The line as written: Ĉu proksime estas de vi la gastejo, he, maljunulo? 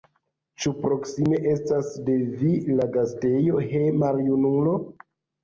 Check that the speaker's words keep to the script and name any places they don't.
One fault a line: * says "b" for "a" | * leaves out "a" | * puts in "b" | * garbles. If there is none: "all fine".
all fine